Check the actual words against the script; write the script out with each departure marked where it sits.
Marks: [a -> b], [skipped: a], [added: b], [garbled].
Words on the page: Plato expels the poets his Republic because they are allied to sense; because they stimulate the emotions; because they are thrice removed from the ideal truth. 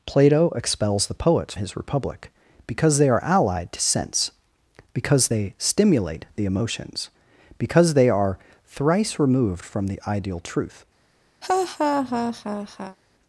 Plato expels the poets his Republic because they are allied to sense; because they stimulate the emotions; because they are thrice removed from the ideal truth.